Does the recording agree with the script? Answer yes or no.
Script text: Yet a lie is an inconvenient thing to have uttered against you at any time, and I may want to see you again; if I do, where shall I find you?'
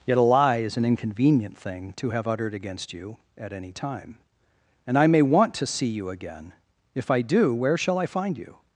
yes